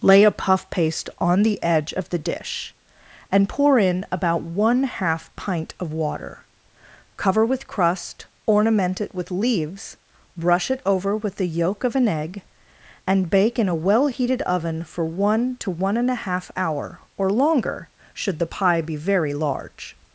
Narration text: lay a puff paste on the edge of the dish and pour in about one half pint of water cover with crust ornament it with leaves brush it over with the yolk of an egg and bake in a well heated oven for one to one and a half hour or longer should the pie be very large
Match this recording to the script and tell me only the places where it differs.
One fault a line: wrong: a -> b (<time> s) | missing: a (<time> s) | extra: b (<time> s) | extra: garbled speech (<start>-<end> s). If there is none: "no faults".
no faults